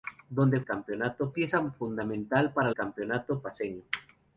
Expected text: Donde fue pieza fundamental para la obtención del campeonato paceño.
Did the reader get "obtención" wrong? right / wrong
wrong